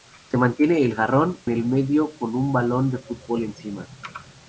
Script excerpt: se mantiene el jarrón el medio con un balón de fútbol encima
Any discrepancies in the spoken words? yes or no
no